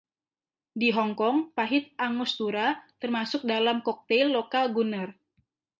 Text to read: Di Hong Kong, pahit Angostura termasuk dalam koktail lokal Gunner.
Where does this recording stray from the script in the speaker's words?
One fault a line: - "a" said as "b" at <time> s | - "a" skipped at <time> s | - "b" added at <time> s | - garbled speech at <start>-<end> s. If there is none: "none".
none